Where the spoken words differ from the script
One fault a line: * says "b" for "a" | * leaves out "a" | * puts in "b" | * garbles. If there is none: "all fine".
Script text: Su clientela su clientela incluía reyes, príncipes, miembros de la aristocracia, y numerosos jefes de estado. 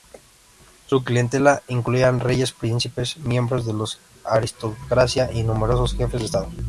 * leaves out "su clientela"